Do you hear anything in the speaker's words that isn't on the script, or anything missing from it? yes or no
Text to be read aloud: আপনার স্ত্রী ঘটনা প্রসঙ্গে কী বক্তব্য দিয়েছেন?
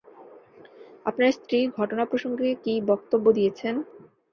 no